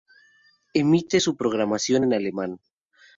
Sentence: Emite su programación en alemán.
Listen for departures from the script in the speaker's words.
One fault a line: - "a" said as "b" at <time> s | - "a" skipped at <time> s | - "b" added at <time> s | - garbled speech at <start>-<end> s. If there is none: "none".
none